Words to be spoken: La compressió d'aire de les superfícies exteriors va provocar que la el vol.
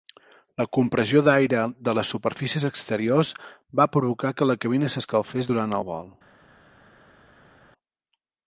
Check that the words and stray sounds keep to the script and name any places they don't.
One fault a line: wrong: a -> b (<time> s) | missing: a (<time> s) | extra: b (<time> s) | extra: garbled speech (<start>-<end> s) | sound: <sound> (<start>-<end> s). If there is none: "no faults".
extra: cabina s'escalfés durant (4.7 s)